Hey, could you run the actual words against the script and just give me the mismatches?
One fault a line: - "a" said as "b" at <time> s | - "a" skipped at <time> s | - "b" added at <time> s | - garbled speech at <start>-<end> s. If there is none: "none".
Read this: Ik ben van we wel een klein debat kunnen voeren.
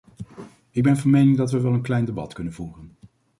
- "mening dat" added at 1.1 s